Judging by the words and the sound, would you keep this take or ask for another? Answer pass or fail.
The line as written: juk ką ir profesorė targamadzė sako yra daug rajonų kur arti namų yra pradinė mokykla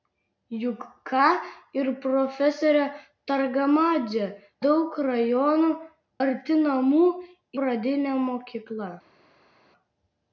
fail